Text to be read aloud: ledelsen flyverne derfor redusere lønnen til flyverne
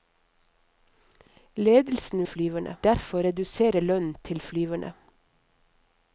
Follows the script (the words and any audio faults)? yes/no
yes